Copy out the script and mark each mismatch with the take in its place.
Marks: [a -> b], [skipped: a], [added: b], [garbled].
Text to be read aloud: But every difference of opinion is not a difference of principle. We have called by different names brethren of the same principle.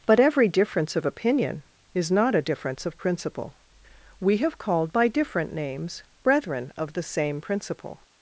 But every difference of opinion is not a difference of principle. We have called by different names brethren of the same principle.